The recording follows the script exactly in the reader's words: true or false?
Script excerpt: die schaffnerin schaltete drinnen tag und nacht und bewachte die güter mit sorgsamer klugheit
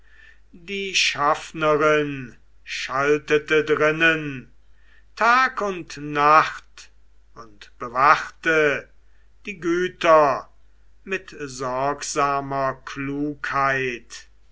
true